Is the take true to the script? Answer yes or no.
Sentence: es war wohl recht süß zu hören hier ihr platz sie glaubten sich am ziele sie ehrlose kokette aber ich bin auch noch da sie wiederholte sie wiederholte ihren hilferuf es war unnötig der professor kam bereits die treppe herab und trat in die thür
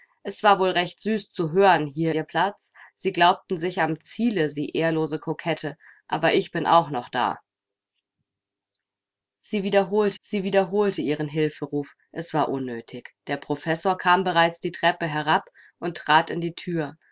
yes